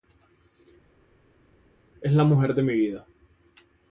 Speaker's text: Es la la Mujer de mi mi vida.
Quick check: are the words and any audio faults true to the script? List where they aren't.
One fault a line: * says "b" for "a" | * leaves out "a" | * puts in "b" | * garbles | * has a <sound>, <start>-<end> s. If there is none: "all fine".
* leaves out "la"
* leaves out "mi"